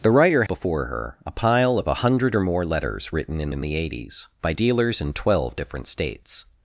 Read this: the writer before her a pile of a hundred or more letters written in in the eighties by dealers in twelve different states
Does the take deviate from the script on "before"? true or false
false